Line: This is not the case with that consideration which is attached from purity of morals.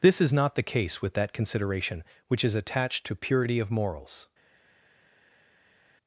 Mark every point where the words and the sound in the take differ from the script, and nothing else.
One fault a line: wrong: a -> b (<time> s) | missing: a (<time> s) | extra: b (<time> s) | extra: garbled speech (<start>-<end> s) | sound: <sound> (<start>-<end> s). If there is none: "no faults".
wrong: from -> to (3.0 s)